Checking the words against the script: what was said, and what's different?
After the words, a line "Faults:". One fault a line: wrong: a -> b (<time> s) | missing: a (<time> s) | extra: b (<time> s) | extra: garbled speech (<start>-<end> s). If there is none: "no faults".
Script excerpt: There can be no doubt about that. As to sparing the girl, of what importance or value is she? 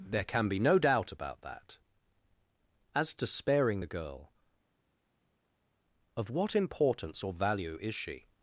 There can be no doubt about that. As to sparing the girl, of what importance or value is she?
Faults:
no faults